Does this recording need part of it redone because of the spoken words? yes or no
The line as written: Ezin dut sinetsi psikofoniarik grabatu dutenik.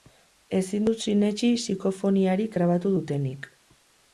no